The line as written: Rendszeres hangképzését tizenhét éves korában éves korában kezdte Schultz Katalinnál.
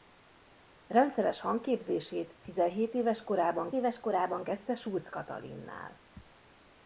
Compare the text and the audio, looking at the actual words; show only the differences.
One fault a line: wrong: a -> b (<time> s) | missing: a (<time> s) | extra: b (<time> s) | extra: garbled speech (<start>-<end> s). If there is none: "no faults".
no faults